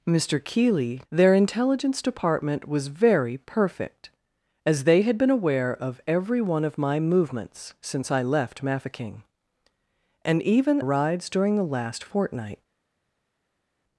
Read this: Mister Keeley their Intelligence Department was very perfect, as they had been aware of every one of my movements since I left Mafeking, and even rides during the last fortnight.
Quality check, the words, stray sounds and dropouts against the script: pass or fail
pass